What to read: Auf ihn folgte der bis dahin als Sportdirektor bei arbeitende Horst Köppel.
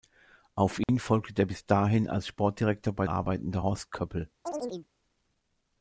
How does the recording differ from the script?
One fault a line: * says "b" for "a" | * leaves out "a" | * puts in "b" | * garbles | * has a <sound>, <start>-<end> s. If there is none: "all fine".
* has a dropout, 0.8-0.9 s
* has a chirp, 4.4-4.9 s